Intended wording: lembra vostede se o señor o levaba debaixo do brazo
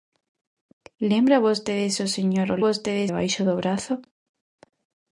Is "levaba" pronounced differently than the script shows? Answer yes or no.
yes